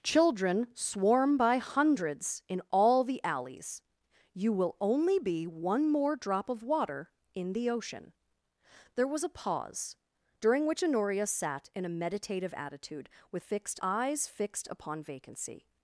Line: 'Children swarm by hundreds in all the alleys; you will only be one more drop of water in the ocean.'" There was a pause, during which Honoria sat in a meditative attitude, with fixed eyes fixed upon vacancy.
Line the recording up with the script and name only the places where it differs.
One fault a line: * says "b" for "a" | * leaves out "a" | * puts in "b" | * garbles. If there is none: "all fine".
all fine